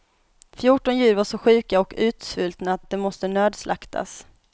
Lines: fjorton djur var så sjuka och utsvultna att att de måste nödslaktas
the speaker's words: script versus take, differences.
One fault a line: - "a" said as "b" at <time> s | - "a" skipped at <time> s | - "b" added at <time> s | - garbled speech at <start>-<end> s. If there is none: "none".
none